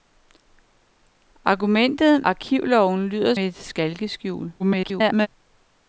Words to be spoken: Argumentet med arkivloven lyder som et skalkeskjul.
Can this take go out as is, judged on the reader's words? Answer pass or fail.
fail